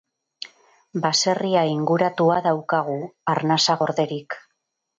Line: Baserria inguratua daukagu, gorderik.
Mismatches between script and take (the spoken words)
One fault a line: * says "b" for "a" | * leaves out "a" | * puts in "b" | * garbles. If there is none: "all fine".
* puts in "arnasa"